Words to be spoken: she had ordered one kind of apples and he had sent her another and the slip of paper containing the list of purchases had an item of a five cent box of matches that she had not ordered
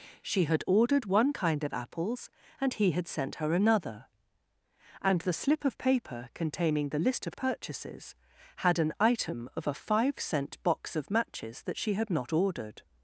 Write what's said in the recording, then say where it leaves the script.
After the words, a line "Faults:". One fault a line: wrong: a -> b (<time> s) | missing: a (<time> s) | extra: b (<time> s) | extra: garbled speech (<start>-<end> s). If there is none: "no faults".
she had ordered one kind of apples and he had sent her another and the slip of paper containing the list of purchases had an item of a five cent box of matches that she had not ordered
Faults:
no faults